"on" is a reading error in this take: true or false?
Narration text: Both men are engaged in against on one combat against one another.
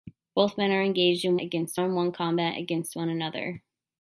false